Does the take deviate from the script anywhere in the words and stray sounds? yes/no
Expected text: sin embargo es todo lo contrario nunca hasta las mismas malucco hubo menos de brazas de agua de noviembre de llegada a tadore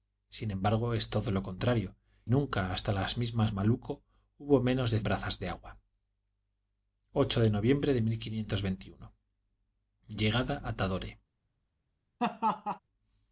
yes